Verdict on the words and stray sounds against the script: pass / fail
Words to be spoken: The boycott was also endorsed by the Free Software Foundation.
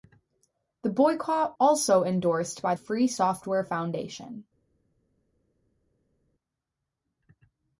fail